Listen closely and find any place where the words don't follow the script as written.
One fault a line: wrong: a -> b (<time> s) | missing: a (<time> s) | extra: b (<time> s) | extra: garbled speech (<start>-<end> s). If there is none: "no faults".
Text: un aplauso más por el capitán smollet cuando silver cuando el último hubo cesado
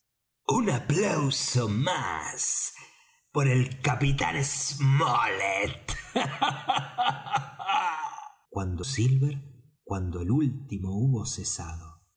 no faults